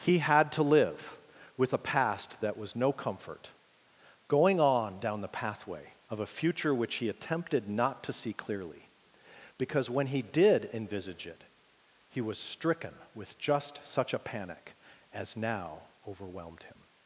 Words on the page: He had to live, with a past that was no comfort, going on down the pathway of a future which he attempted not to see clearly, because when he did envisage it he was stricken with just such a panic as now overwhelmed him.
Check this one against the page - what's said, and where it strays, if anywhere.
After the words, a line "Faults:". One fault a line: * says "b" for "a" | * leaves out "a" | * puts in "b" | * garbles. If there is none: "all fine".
He had to live, with a past that was no comfort, going on down the pathway of a future which he attempted not to see clearly, because when he did envisage it he was stricken with just such a panic as now overwhelmed him.
Faults:
all fine